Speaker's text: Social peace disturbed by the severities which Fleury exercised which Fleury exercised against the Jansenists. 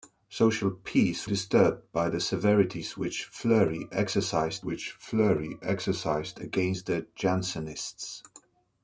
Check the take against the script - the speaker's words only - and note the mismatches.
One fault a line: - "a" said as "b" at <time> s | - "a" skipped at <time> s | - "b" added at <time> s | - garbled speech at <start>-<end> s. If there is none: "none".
none